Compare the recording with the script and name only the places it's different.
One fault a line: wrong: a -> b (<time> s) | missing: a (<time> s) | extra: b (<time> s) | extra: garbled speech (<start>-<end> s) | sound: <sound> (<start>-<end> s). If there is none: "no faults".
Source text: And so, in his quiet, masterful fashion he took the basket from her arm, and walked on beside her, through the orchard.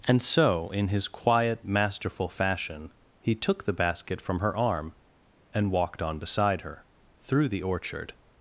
no faults